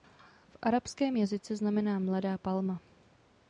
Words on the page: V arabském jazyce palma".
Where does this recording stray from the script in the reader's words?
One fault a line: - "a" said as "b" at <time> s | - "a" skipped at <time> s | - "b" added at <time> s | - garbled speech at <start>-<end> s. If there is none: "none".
- "znamená mladá" added at 1.6 s